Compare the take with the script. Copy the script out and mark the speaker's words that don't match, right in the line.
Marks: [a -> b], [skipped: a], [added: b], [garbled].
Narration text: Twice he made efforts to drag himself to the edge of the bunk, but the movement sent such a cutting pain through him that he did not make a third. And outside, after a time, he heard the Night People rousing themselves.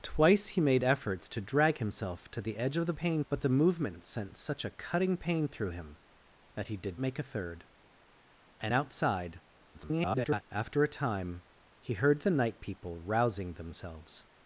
Twice he made efforts to drag himself to the edge of the [bunk, -> pain] but the movement sent such a cutting pain through him that he did [skipped: not] make a third. And outside, [garbled] after a time, he heard the Night People rousing themselves.